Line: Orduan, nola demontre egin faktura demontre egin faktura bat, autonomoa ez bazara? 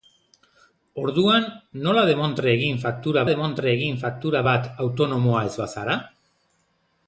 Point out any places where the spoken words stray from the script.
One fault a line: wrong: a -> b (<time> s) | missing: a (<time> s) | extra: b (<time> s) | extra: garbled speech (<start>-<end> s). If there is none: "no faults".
no faults